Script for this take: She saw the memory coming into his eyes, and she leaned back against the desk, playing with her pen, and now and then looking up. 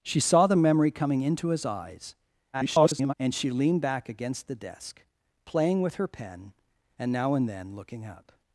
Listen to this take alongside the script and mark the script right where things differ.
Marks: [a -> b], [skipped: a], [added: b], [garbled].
She saw the memory coming into his eyes, [garbled] and she leaned back against the desk, playing with her pen, and now and then looking up.